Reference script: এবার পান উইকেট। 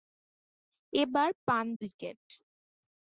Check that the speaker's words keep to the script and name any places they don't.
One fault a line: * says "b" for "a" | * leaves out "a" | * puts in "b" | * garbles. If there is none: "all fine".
all fine